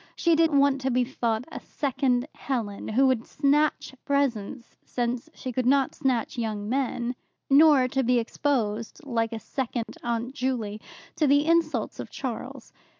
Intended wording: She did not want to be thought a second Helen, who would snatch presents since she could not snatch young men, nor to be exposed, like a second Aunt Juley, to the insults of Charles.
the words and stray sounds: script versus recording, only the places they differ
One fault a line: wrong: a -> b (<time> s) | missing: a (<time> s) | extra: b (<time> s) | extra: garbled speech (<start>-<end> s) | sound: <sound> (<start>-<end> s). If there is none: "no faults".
missing: not (0.5 s)
sound: dropout (9.8-9.9 s)